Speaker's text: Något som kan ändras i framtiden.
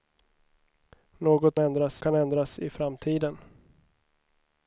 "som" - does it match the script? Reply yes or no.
no